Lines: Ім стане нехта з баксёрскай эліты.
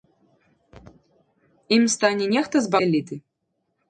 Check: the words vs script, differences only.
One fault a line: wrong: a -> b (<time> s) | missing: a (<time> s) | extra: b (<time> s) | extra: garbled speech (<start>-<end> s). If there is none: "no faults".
missing: баксёрскай (2.7 s)